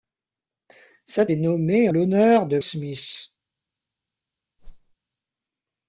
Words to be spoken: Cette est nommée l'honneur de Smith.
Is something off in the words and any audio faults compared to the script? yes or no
yes